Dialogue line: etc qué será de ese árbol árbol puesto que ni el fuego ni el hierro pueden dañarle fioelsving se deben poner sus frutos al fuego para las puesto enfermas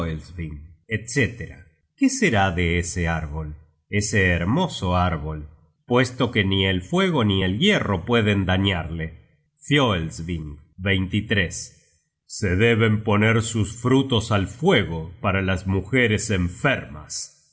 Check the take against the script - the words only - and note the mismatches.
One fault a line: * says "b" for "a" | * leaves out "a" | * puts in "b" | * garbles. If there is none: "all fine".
* puts in "ese hermoso"
* says "mujeres" for "puesto"